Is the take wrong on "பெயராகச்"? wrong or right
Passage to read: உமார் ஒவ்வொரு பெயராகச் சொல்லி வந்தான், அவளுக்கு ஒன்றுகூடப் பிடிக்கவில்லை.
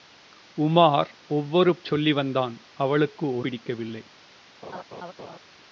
wrong